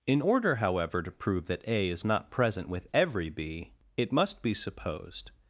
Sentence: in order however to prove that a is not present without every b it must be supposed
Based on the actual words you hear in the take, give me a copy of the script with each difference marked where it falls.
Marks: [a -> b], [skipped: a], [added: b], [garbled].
in order however to prove that a is not present [without -> with] every b it must be supposed